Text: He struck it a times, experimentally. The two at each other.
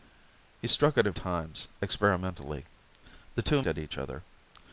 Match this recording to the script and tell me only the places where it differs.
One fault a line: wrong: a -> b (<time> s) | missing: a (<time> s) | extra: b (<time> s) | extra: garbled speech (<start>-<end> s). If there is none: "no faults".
no faults